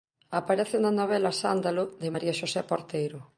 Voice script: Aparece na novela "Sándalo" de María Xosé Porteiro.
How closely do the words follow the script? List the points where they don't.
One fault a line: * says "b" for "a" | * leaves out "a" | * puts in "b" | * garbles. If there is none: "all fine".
all fine